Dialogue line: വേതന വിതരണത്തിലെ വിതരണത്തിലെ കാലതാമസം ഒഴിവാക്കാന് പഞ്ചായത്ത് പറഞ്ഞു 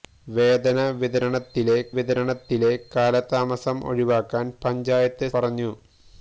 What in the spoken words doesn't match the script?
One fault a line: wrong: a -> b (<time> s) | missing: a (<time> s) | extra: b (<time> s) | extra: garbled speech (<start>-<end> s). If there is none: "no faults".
no faults